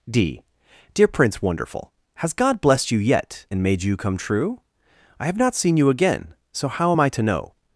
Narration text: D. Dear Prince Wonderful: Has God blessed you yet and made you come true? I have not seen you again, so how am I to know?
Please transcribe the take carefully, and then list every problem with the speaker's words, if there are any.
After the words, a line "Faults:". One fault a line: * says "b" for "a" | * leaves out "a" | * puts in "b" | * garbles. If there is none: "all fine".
D. Dear Prince Wonderful: Has God blessed you yet and made you come true? I have not seen you again, so how am I to know?
Faults:
all fine